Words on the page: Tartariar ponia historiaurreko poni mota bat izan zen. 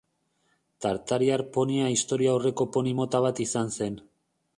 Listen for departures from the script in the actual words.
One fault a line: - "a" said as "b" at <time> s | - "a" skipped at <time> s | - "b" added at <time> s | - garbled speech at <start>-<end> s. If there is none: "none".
none